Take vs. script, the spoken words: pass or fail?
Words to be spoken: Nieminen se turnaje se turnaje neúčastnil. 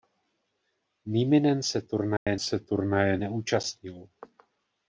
pass